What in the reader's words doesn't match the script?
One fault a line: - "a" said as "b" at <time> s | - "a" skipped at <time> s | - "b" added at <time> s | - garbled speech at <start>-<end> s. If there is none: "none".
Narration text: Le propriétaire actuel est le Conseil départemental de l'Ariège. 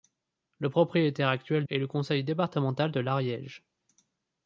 none